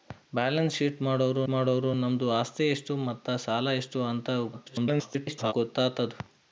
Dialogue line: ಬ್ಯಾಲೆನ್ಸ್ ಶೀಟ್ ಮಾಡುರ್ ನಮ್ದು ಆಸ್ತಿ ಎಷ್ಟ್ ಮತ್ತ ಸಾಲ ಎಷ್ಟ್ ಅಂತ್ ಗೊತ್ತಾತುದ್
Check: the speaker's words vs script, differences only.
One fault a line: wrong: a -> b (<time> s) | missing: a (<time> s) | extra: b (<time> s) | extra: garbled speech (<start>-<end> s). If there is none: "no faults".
extra: ಮಾಡುರ್ (1.5 s)
extra: garbled speech (4.5-5.5 s)